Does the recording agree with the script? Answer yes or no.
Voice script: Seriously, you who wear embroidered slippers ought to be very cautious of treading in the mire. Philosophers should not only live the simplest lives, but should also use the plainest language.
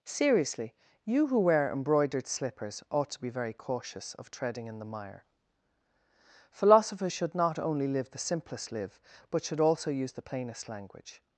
no